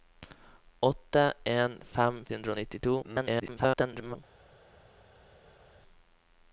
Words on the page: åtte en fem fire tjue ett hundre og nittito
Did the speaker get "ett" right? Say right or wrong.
wrong